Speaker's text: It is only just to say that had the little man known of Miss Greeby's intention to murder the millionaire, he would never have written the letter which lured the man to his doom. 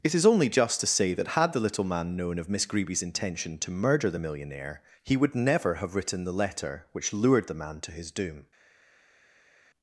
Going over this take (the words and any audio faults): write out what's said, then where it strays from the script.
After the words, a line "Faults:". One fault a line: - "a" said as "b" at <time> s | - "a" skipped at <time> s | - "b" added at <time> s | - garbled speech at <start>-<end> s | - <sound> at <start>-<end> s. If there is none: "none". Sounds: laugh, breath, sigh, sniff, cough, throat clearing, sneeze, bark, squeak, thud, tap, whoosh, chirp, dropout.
It is only just to say that had the little man known of Miss Greeby's intention to murder the millionaire, he would never have written the letter which lured the man to his doom.
Faults:
none